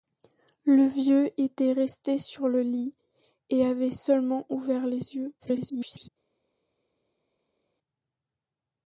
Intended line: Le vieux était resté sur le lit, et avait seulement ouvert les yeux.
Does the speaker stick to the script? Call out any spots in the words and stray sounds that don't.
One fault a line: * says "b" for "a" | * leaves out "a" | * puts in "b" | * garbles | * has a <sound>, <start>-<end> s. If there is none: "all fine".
* garbles